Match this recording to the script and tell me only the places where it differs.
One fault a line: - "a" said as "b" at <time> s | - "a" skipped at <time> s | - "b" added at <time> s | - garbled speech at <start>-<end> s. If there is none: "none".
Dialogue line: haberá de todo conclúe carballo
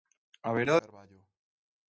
- "de todo conclúe" skipped at 0.8 s